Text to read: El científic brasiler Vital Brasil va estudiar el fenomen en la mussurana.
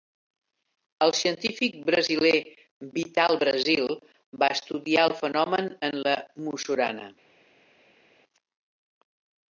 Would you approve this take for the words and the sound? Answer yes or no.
yes